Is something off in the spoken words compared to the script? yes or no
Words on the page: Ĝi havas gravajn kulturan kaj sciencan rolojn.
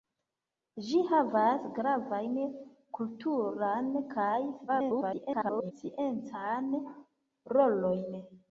yes